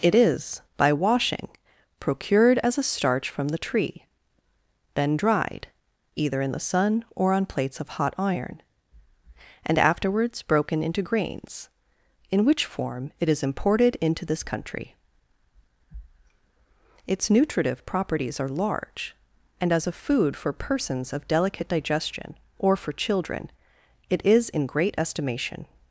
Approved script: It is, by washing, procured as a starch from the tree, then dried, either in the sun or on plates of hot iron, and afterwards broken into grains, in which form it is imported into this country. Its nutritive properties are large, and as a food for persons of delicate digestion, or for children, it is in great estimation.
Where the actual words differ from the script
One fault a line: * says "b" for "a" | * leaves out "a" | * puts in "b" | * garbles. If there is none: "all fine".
all fine